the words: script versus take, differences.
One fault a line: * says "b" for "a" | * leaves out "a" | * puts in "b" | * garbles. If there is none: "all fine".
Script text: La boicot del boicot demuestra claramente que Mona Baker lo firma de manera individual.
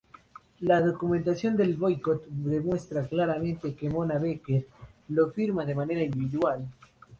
* says "documentación" for "boicot"